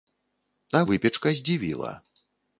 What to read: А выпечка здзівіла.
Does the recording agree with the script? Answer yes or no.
yes